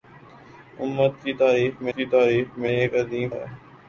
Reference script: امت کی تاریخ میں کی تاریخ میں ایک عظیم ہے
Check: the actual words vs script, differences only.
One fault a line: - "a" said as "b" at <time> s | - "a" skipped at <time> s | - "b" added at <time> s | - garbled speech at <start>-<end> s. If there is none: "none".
none